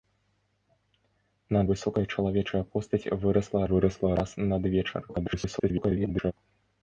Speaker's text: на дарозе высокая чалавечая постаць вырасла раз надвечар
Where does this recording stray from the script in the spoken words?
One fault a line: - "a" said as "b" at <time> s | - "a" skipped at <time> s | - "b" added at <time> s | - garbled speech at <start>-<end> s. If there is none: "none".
- "дарозе" skipped at 1.6 s
- "вырасла" added at 3.7 s
- garbled speech at 5.1-6.3 s